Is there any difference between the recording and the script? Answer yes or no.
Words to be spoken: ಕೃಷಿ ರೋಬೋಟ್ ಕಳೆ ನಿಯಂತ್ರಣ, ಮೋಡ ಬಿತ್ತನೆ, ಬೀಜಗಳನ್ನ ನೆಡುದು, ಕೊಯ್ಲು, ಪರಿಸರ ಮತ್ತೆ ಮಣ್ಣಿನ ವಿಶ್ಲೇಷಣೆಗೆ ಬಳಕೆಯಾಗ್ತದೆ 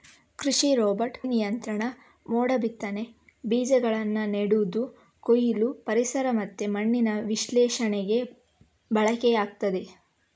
yes